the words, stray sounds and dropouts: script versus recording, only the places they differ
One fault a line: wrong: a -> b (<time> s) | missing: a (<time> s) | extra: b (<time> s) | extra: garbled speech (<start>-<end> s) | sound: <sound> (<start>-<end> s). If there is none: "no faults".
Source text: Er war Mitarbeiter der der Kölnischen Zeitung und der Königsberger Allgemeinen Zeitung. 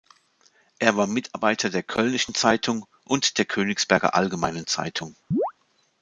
missing: der (1.8 s)
sound: chirp (5.3-5.5 s)